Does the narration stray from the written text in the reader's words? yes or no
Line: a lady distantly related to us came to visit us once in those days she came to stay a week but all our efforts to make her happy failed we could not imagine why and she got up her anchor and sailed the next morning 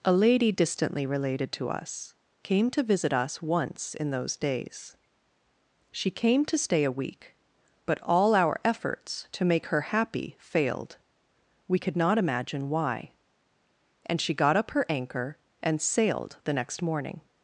no